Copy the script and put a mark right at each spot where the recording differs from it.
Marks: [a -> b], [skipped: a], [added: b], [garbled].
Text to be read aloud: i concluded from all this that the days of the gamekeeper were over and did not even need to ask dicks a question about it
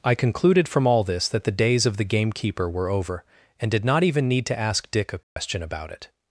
i concluded from all this that the days of the gamekeeper were over and did not even need to ask [dicks -> dick] a question about it